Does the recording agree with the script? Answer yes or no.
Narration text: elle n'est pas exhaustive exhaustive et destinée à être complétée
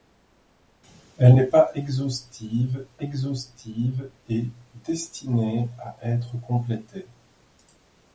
yes